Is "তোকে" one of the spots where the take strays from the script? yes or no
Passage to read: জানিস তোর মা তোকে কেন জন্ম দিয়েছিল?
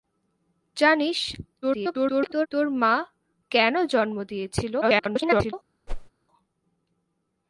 yes